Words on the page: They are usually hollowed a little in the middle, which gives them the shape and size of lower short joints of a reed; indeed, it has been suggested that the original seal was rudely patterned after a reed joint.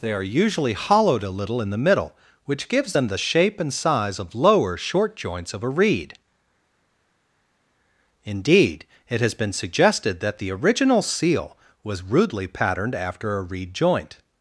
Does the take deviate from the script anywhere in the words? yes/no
no